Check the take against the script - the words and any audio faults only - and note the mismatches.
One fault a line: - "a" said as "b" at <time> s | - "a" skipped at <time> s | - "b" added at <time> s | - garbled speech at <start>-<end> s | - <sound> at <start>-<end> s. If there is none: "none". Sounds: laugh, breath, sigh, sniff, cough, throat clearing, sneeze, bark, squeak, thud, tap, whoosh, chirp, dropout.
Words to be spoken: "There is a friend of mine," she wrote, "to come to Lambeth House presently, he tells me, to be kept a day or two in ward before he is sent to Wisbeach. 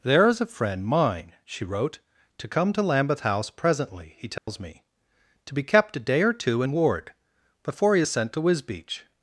- "of" skipped at 0.8 s
- dropout at 4.4-4.5 s